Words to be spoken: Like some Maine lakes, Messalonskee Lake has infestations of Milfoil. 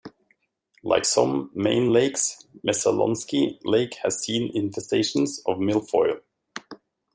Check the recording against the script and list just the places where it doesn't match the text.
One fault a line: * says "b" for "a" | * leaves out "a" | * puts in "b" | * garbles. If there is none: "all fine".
* puts in "seen"